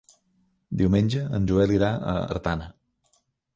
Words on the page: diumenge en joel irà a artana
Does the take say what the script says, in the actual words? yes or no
yes